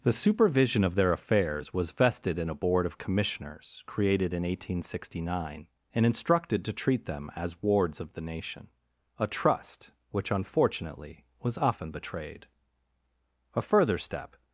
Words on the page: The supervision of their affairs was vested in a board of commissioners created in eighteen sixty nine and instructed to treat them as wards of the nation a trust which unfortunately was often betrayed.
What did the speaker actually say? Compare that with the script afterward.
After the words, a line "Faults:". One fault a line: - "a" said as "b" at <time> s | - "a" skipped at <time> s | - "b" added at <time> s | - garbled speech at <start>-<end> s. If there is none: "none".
The supervision of their affairs was vested in a board of commissioners created in eighteen sixty nine and instructed to treat them as wards of the nation a trust which unfortunately was often betrayed. A further step
Faults:
- "A further step" added at 13.5 s